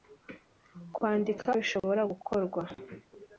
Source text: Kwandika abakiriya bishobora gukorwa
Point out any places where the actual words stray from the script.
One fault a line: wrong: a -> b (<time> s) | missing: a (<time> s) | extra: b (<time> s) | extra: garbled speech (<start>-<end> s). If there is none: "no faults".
missing: abakiriya (1.5 s)